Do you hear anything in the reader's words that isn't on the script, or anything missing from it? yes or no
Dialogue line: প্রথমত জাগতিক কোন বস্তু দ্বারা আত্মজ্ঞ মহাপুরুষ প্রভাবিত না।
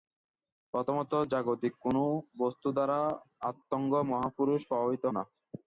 no